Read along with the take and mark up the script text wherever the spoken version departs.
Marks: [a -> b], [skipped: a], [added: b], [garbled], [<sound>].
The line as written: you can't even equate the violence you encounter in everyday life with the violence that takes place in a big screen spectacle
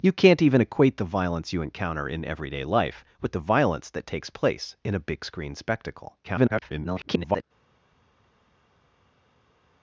you can't even equate the violence you encounter in everyday life with the violence that takes place in a big screen spectacle [garbled]